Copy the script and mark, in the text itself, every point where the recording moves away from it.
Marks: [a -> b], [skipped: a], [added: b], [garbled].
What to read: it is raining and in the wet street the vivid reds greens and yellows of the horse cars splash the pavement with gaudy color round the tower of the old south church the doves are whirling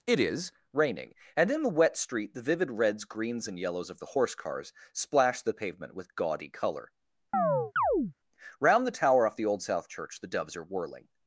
it is raining and in the wet street the vivid reds greens and yellows of the horse cars splash the pavement with gaudy color round the tower [of -> off] the old south church the doves are whirling